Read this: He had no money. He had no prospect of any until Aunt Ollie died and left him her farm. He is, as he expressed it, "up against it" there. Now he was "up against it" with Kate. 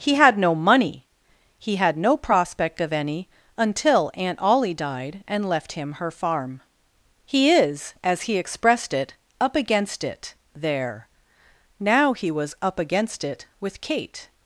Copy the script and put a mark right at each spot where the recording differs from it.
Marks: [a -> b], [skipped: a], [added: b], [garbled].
He had no money. He had no prospect of any until Aunt Ollie died and left him her farm. He is, as he expressed it, "up against it" there. Now he was "up against it" with Kate.